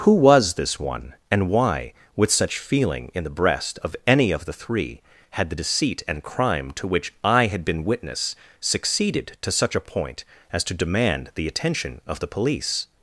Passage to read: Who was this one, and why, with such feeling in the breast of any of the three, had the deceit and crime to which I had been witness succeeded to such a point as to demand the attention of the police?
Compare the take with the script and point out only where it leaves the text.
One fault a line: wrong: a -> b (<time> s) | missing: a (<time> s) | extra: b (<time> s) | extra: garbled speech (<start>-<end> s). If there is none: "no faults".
no faults